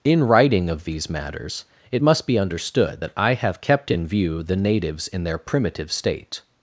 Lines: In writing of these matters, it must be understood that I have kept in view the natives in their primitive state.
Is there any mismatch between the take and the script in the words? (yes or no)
no